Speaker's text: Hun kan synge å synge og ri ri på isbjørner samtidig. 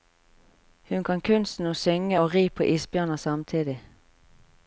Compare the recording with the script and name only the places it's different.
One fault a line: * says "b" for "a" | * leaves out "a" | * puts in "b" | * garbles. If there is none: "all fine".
* says "kunsten" for "synge"
* leaves out "ri"